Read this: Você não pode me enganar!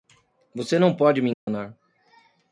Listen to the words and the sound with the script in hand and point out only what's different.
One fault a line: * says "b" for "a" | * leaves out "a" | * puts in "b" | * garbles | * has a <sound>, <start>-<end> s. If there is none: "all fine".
* has a dropout, 1.3-1.5 s